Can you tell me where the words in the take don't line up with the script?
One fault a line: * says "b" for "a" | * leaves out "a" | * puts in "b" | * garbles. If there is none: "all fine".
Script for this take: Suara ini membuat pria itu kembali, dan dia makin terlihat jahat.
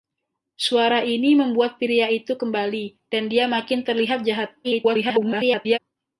* garbles